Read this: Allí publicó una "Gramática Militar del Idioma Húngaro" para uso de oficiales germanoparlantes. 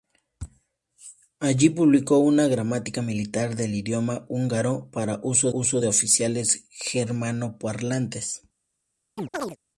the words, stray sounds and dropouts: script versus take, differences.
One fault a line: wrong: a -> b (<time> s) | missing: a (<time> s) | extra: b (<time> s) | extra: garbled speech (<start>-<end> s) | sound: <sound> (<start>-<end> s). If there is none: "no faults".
extra: uso (5.5 s)
sound: chirp (9.2-9.6 s)